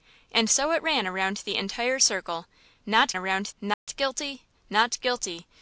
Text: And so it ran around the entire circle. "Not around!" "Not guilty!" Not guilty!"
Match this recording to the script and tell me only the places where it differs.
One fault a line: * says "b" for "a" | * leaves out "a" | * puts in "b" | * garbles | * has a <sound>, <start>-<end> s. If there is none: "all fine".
* has a dropout, 3.7-3.9 s